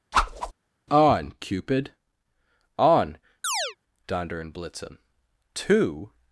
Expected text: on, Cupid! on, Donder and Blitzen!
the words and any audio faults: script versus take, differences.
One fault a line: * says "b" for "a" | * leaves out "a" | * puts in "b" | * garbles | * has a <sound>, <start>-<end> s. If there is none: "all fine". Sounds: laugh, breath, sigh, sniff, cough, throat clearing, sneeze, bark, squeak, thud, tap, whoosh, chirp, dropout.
* has a whoosh, 0.1-0.5 s
* has a chirp, 3.4-3.8 s
* puts in "To"